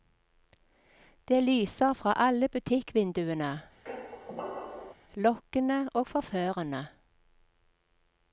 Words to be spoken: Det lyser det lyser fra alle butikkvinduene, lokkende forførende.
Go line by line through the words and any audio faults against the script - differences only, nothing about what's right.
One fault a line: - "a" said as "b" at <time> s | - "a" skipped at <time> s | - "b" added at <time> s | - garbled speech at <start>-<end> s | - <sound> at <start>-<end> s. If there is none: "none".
- "det lyser" skipped at 1.9 s
- squeak at 3.9-4.9 s
- "og" added at 5.9 s